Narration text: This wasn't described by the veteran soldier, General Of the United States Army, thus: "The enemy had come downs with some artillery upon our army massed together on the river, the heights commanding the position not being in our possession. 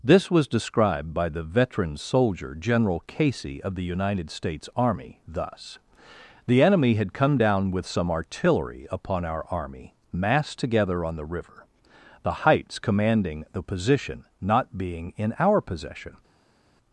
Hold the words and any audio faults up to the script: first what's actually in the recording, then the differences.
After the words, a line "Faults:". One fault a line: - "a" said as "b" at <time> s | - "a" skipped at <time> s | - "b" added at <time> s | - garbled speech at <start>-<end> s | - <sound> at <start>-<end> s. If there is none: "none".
This was described by the veteran soldier, General Casey, of the United States Army, thus: "The enemy had come down with some artillery upon our army massed together on the river, the heights commanding the position not being in our possession.
Faults:
- "wasn't" said as "was" at 0.3 s
- "Casey" added at 3.0 s
- "downs" said as "down" at 7.3 s